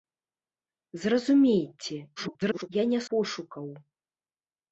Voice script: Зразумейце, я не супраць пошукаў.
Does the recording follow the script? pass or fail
fail